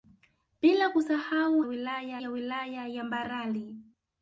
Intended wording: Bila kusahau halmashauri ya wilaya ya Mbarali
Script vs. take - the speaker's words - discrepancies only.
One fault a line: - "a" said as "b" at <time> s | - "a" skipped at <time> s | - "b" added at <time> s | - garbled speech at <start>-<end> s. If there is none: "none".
- "halmashauri" said as "wilaya" at 1.6 s